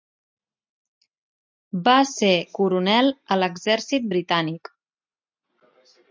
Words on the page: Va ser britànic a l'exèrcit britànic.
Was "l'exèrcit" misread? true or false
false